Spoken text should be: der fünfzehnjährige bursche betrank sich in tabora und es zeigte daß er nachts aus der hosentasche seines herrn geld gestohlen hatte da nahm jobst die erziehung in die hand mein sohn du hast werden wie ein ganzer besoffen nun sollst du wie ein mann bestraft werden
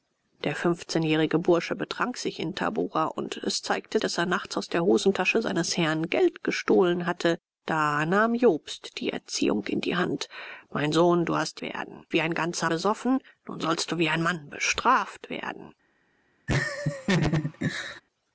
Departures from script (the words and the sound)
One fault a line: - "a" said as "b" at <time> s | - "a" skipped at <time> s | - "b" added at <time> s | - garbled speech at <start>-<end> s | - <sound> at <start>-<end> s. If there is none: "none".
- laugh at 16.5-18.0 s